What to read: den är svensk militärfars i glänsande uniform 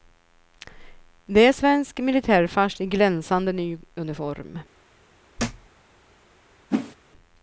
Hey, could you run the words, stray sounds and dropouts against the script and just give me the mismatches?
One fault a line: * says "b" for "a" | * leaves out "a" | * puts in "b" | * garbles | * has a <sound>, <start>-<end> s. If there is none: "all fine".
* says "det" for "den"
* puts in "ny"
* has a thud, 5.4-5.7 s
* has a whoosh, 6.7-7.0 s